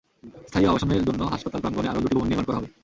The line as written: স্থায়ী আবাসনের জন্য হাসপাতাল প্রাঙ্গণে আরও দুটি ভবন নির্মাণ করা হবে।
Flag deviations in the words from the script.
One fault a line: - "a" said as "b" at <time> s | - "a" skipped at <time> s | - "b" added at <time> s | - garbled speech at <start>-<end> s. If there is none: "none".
none